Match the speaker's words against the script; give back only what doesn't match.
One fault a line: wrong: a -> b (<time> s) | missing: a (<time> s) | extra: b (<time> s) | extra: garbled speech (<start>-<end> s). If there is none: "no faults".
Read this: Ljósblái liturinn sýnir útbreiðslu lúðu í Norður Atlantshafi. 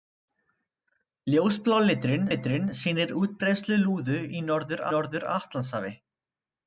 extra: liturinn (2.3 s)
extra: Norður (4.9 s)